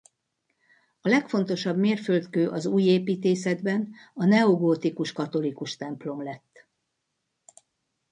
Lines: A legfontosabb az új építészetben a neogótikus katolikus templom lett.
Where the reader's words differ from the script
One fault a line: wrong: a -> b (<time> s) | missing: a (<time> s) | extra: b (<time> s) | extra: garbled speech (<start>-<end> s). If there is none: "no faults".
extra: mérföldkő (1.8 s)